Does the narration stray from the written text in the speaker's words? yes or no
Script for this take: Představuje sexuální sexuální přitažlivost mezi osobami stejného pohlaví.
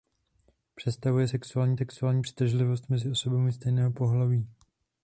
no